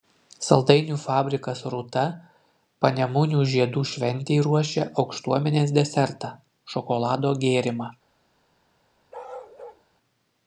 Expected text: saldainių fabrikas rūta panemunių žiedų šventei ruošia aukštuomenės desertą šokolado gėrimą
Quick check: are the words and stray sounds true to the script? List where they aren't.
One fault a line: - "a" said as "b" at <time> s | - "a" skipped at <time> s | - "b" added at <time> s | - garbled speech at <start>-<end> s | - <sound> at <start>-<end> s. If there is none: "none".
- bark at 9.1-9.8 s